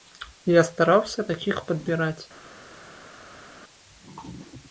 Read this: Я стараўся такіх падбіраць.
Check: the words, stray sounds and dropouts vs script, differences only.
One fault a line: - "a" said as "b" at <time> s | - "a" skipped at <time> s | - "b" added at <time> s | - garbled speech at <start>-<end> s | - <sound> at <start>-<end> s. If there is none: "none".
none